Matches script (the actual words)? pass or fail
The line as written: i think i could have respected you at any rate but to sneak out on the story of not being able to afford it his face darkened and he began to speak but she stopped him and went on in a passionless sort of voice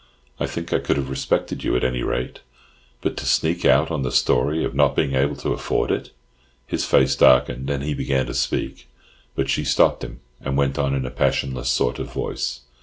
pass